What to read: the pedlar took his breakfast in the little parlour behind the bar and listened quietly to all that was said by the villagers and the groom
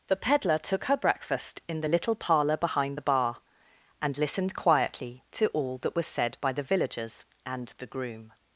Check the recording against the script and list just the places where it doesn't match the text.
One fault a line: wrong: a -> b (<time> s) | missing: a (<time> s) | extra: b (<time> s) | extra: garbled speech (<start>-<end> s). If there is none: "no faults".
wrong: his -> her (0.8 s)